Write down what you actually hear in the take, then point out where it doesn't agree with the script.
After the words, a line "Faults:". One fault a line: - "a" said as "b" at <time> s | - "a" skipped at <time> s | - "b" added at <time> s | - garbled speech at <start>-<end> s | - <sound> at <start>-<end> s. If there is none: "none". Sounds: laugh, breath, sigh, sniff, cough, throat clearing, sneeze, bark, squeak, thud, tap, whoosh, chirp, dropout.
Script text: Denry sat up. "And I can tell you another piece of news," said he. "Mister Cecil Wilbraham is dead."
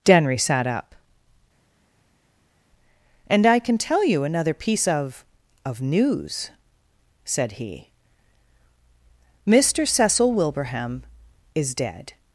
Denry sat up. "And I can tell you another piece of of news," said he. "Mister Cecil Wilbraham is dead."
Faults:
- "of" added at 5.6 s